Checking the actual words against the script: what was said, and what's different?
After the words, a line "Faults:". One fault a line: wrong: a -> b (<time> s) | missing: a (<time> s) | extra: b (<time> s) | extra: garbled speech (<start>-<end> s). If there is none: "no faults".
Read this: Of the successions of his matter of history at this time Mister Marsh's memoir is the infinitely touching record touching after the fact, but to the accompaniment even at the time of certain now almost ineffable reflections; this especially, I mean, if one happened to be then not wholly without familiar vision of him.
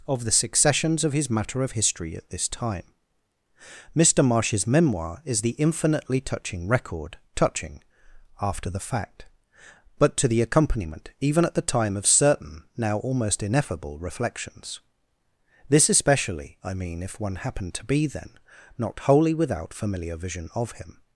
Of the successions of his matter of history at this time Mister Marsh's memoir is the infinitely touching record touching after the fact, but to the accompaniment even at the time of certain now almost ineffable reflections; this especially, I mean, if one happened to be then not wholly without familiar vision of him.
Faults:
no faults